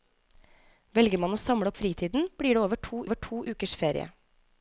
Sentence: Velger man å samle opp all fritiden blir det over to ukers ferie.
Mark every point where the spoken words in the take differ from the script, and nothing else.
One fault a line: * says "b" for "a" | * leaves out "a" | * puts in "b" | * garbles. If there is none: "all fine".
* leaves out "opp all"
* puts in "over to"